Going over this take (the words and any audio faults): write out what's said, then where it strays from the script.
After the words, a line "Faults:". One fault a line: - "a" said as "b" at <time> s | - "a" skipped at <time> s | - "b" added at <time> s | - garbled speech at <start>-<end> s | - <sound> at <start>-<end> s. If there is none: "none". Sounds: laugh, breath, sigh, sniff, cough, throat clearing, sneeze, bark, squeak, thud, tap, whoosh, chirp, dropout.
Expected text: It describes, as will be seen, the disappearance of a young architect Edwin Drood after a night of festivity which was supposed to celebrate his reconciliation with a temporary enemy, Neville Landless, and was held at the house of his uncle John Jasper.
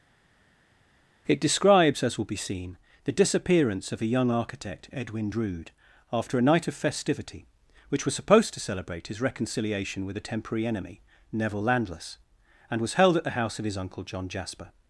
It describes, as will be seen, the disappearance of a young architect Edwin Drood after a night of festivity which was supposed to celebrate his reconciliation with a temporary enemy, Neville Landless, and was held at the house of his uncle John Jasper.
Faults:
none